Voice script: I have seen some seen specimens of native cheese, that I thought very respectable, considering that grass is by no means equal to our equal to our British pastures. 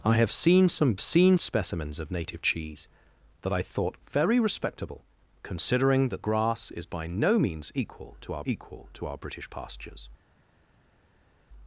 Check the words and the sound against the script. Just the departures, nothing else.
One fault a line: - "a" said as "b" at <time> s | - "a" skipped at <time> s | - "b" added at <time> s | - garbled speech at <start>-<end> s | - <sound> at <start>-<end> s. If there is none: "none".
none